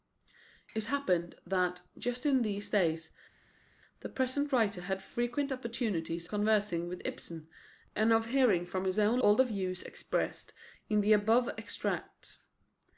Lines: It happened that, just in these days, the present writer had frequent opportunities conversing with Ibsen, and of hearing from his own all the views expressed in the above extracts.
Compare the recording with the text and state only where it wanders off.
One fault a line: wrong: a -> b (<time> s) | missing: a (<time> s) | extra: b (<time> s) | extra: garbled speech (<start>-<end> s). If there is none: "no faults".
no faults